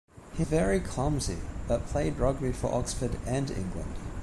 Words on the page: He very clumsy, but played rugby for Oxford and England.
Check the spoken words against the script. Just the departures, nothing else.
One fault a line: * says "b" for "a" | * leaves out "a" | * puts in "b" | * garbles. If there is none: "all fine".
all fine